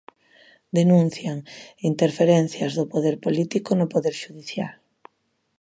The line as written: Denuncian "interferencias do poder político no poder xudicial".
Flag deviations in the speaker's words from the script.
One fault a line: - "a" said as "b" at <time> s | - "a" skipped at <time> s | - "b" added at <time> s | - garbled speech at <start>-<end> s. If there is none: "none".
none